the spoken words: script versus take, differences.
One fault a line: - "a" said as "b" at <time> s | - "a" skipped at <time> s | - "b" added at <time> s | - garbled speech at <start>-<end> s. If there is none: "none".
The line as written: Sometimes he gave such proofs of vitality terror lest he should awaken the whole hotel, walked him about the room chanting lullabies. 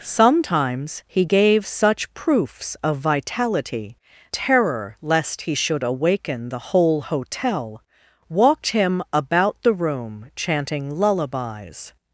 none